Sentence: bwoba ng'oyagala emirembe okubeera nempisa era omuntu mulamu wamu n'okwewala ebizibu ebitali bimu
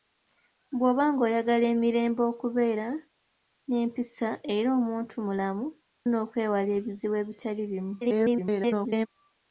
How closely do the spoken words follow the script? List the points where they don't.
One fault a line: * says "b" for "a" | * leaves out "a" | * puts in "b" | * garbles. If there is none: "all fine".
* leaves out "wamu"
* garbles